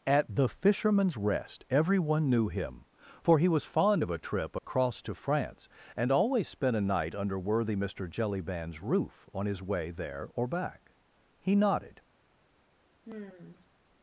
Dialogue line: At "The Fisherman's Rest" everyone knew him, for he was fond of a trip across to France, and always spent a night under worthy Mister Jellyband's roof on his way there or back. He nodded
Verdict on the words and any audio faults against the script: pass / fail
fail